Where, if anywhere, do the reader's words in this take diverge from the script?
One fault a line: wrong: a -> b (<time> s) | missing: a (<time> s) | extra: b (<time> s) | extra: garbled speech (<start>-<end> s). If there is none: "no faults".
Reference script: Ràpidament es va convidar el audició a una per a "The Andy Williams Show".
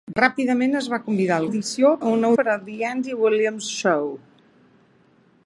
no faults